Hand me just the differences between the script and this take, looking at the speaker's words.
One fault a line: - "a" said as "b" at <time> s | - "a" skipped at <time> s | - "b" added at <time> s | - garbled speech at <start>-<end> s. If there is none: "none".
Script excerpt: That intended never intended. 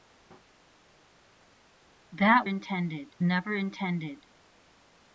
none